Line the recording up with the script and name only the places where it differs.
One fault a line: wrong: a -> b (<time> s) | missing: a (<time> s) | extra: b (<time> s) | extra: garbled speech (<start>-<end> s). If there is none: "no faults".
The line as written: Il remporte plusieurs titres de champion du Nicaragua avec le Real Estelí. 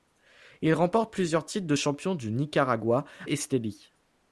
missing: avec le Real (3.0 s)